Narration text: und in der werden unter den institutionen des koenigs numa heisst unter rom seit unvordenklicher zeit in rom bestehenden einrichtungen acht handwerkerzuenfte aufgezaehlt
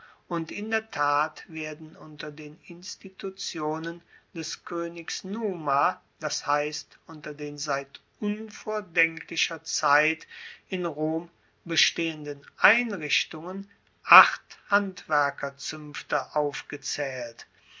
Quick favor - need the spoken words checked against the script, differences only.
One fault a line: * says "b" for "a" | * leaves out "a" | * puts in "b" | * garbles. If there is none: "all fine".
* puts in "tat"
* puts in "das"
* says "den" for "rom"